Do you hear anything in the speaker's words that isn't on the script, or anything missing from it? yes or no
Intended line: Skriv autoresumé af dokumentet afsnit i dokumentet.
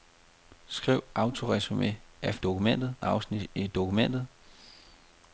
no